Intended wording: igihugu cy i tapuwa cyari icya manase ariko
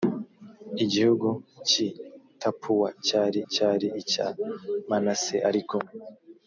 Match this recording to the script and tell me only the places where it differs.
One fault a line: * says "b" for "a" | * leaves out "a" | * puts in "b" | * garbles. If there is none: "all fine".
* puts in "cyari"